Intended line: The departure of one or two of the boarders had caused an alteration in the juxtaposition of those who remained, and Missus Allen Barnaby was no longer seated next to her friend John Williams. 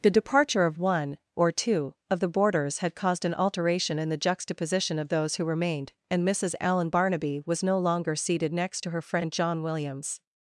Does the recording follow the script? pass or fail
pass